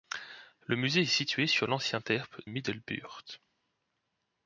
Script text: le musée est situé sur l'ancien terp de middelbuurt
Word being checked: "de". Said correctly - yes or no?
no